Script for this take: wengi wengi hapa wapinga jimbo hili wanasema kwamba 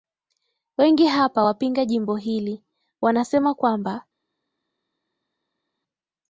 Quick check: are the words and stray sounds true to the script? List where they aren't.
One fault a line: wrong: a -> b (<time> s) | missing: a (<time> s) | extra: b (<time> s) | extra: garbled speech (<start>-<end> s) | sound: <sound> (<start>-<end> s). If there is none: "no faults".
missing: wengi (1.1 s)